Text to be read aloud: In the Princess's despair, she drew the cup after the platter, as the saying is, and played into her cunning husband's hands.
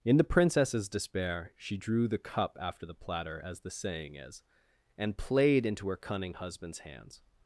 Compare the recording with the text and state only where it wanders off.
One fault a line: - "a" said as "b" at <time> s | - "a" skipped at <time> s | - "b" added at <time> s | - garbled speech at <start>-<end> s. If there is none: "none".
none